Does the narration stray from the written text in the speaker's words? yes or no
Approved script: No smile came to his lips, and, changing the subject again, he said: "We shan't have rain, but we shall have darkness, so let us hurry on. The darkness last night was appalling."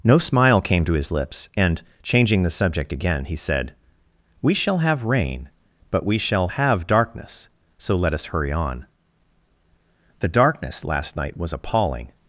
yes